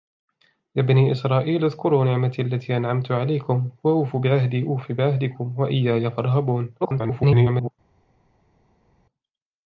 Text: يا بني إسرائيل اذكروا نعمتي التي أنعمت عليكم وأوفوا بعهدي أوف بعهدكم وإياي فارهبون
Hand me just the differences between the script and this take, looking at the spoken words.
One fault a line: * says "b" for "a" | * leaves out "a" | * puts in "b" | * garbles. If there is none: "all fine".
* garbles